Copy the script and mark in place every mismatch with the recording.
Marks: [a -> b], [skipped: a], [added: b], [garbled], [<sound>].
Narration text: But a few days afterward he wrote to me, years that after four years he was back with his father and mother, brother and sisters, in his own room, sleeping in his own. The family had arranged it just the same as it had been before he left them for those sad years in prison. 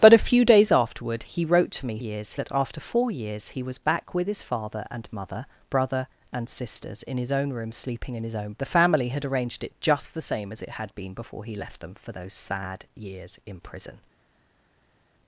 But a few days afterward he wrote to me, years that after four years he was back with his father and mother, brother and sisters, in his own room, sleeping in his own. The family had arranged it just the same as it had been before he left them for those sad years in prison.